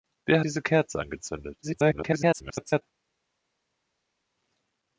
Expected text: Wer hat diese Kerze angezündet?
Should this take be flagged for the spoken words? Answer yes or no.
yes